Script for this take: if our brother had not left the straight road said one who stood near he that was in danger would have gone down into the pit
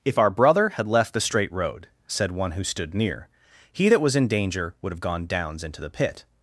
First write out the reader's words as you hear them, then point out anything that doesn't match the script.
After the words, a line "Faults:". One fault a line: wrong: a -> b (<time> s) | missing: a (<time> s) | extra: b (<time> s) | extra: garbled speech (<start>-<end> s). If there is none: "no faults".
if our brother had left the straight road said one who stood near he that was in danger would have gone downs into the pit
Faults:
missing: not (0.9 s)
wrong: down -> downs (5.3 s)